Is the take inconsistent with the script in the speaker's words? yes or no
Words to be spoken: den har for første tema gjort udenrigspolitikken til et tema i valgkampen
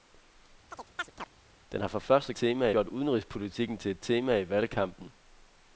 no